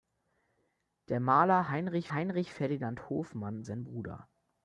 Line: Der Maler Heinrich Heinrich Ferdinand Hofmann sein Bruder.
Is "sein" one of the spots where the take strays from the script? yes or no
no